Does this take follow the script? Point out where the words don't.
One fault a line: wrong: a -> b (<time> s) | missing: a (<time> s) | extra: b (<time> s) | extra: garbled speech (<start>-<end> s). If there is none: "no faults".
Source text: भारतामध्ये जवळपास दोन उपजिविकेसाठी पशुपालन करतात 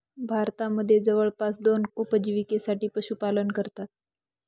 no faults